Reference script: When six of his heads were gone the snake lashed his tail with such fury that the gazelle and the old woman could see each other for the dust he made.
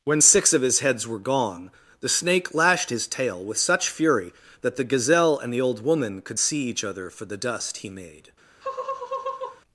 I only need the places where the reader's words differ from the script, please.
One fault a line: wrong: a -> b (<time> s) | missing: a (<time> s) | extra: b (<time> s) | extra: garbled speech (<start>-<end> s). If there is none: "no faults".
no faults